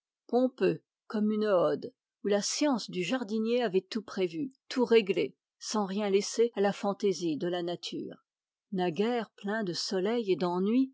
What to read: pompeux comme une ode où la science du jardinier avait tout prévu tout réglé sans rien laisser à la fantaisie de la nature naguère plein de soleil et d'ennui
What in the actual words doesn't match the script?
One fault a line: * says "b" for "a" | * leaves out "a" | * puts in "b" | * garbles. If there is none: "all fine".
all fine